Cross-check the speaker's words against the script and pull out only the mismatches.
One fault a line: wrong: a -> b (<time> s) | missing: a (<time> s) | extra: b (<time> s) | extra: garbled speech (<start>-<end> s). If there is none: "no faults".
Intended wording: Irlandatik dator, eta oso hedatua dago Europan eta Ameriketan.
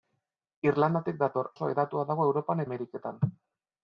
missing: eta (1.5 s)
missing: eta (2.6 s)